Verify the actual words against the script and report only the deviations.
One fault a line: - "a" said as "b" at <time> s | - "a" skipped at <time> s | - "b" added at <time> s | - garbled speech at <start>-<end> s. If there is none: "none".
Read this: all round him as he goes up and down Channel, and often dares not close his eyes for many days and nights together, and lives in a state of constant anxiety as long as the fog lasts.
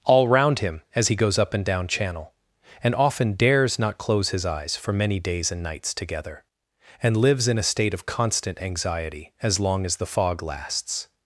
none